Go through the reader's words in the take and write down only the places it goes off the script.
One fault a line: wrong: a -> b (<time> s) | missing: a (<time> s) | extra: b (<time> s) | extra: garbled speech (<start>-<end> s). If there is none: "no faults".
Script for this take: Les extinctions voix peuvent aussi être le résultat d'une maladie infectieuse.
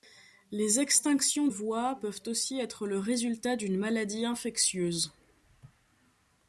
no faults